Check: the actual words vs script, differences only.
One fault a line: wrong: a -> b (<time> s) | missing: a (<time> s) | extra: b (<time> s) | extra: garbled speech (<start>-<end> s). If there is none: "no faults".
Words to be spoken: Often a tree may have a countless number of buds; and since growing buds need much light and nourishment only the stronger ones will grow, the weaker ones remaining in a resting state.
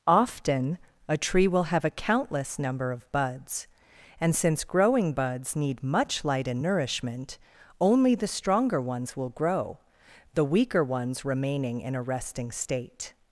wrong: may -> will (1.5 s)